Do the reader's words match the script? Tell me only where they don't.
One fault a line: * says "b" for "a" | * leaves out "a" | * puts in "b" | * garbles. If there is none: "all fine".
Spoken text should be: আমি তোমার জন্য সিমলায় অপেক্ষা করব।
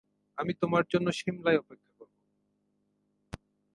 all fine